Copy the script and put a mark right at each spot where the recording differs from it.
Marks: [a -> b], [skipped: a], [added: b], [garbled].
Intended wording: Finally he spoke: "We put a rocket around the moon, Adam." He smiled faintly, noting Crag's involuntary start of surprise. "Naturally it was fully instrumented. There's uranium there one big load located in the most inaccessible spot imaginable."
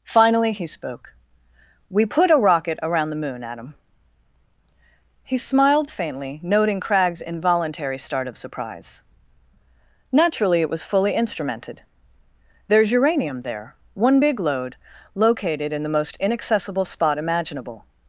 Finally he spoke: "We put a rocket around the moon, Adam." He smiled faintly, noting Crag's involuntary start of surprise. "Naturally it was fully instrumented. There's uranium there one big load located in the most inaccessible spot imaginable."